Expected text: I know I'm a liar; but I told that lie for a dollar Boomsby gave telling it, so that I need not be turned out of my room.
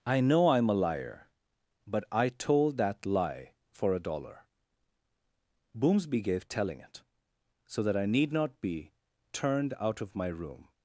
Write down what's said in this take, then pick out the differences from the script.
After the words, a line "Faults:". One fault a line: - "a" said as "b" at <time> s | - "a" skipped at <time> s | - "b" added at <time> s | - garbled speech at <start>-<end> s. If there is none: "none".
I know I'm a liar; but I told that lie for a dollar Boomsby gave telling it, so that I need not be turned out of my room.
Faults:
none